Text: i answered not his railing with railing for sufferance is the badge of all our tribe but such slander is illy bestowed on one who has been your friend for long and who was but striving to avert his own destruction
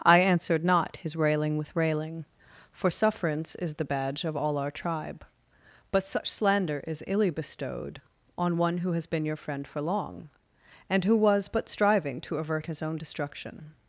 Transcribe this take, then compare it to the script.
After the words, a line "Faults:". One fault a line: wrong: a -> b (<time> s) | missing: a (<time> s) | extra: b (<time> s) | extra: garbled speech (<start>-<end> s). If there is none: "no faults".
i answered not his railing with railing for sufferance is the badge of all our tribe but such slander is illy bestowed on one who has been your friend for long and who was but striving to avert his own destruction
Faults:
no faults